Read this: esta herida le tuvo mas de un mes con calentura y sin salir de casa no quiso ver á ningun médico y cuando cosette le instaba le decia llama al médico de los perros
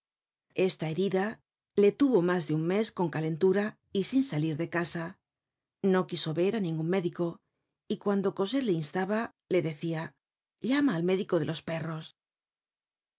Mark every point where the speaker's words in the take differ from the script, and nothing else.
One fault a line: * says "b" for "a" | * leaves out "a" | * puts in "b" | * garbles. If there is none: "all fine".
all fine